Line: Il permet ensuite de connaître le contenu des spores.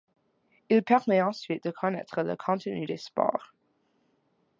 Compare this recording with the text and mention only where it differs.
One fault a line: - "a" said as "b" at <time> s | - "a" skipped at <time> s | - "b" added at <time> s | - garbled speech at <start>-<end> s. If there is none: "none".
none